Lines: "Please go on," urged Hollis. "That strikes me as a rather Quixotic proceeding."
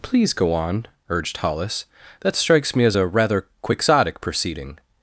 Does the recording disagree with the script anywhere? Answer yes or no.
no